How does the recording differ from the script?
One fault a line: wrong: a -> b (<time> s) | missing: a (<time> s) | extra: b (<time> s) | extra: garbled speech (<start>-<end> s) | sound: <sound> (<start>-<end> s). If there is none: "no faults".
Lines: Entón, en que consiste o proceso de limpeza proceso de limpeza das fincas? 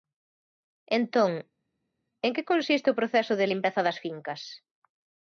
missing: proceso de limpeza (3.8 s)